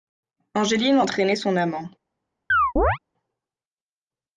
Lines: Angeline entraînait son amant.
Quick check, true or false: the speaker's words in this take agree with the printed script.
true